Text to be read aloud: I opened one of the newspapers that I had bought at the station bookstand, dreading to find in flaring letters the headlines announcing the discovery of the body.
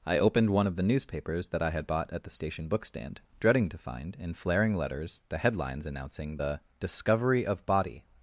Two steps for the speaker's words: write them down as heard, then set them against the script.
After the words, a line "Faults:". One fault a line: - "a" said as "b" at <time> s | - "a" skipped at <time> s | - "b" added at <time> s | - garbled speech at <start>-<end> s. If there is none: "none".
I opened one of the newspapers that I had bought at the station bookstand, dreading to find in flaring letters the headlines announcing the discovery of body.
Faults:
- "the" skipped at 7.6 s